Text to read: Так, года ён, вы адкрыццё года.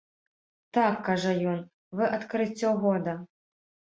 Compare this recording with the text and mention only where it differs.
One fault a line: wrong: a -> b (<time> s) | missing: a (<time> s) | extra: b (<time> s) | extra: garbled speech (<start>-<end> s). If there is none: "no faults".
wrong: года -> кажа (1.1 s)